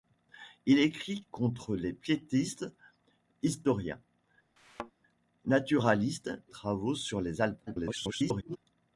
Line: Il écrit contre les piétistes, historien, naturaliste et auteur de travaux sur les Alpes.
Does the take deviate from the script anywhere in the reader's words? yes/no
yes